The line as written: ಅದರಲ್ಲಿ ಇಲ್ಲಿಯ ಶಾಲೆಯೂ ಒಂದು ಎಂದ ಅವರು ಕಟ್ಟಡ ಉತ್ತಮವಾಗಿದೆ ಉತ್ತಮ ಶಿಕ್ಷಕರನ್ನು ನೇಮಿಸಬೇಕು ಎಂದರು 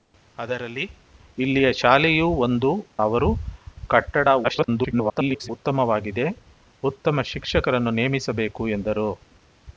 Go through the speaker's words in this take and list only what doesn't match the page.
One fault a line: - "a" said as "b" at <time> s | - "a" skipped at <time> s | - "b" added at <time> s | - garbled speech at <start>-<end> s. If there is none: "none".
- "ಎಂದ" skipped at 2.7 s
- garbled speech at 4.4-5.5 s